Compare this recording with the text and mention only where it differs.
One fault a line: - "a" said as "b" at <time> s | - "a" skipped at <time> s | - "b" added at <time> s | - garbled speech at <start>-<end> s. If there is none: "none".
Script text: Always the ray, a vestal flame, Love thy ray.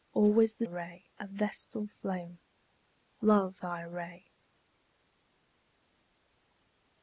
none